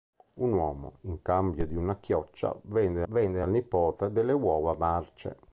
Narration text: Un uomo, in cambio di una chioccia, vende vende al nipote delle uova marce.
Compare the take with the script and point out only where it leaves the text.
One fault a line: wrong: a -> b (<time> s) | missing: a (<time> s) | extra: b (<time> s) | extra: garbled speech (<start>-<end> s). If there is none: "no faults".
no faults